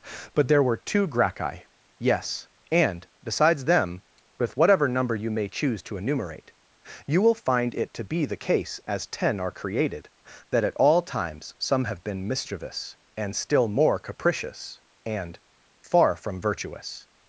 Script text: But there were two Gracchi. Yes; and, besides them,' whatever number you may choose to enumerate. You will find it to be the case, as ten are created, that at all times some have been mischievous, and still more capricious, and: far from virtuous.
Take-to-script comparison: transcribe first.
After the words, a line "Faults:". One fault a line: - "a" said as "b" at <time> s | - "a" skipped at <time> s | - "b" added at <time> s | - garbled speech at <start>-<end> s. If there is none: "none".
But there were two Gracchi. Yes; and, besides them,' with whatever number you may choose to enumerate. You will find it to be the case, as ten are created, that at all times some have been mischievous, and still more capricious, and: far from virtuous.
Faults:
- "with" added at 4.4 s